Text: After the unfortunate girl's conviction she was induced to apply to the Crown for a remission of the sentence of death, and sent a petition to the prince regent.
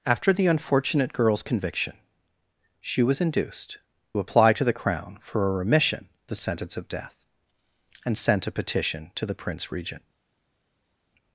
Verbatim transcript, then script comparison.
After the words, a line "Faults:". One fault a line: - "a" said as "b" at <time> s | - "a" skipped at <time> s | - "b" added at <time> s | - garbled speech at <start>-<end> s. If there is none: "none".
After the unfortunate girl's conviction she was induced apply to the Crown for a remission the sentence of death, and sent a petition to the prince regent.
Faults:
- "to" skipped at 3.8 s
- "of" skipped at 6.1 s